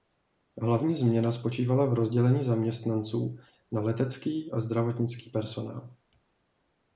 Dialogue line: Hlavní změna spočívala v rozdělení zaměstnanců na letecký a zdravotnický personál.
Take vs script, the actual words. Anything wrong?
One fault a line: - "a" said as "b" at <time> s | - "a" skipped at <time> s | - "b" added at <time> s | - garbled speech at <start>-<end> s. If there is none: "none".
none